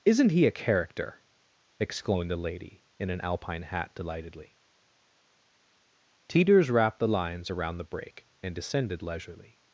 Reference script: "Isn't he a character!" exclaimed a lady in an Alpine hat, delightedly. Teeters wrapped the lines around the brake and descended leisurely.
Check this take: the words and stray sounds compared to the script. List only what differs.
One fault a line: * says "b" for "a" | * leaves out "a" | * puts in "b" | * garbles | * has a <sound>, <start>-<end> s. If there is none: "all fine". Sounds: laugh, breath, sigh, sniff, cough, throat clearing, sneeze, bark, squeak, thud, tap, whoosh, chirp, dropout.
* says "the" for "a"